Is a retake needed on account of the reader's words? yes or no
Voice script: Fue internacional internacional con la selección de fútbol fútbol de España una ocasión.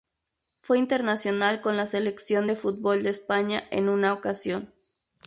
yes